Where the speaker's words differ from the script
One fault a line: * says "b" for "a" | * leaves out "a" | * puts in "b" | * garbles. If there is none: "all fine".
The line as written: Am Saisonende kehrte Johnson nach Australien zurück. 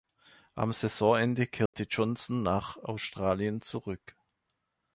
all fine